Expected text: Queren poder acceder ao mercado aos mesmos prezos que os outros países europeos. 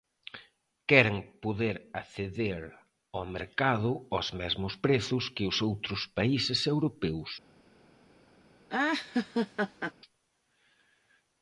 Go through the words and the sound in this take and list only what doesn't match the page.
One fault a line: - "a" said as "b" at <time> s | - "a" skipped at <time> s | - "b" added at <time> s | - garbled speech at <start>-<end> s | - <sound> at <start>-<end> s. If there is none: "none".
- laugh at 8.7-9.9 s